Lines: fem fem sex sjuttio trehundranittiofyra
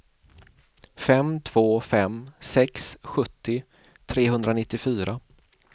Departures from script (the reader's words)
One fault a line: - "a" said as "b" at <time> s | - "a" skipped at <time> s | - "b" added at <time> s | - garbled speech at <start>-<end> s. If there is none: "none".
- "två" added at 1.4 s